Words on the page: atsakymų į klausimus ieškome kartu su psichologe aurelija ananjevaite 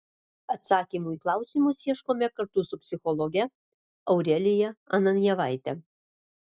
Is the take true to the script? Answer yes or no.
yes